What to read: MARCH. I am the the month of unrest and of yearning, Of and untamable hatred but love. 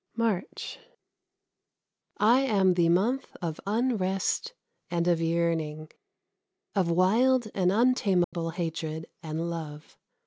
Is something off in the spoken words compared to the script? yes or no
yes